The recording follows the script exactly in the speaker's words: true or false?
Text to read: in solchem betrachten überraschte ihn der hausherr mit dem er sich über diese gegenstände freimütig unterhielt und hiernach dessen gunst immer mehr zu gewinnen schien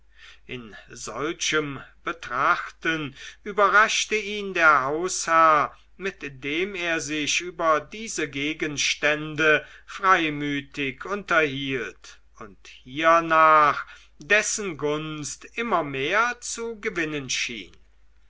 true